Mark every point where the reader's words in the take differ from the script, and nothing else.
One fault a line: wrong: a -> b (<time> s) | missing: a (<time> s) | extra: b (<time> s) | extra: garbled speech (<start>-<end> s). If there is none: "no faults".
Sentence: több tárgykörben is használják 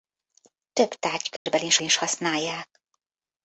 extra: is (1.8 s)